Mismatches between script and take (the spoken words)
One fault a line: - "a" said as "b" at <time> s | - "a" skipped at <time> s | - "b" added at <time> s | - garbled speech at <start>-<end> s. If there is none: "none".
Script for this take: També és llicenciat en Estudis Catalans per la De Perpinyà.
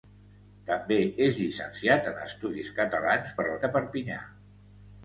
none